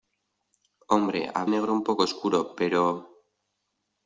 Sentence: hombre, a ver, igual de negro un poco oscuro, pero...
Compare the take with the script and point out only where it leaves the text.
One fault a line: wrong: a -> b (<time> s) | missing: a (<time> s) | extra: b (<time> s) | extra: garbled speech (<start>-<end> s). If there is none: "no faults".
missing: ver igual de (1.4 s)